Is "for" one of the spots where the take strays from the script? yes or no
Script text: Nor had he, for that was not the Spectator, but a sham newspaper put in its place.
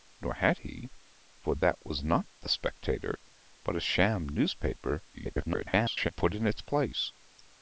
no